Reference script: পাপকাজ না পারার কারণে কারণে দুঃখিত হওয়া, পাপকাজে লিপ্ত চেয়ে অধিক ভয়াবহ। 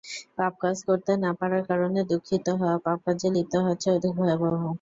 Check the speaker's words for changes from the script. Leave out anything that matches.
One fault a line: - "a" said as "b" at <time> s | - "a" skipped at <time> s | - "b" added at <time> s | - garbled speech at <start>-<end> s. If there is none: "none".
- "করতে" added at 0.9 s
- "কারণে" skipped at 2.0 s
- "হওয়ার" added at 3.6 s